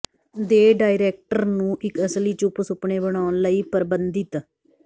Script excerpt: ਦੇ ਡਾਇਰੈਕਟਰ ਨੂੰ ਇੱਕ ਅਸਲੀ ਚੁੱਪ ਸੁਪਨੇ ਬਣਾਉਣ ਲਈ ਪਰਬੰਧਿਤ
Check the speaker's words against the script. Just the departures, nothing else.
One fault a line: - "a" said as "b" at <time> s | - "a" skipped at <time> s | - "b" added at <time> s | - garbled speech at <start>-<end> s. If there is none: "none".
none